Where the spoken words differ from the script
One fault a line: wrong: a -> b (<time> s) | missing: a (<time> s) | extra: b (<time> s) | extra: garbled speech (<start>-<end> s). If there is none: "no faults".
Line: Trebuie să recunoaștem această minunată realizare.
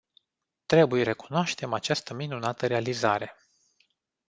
missing: să (1.1 s)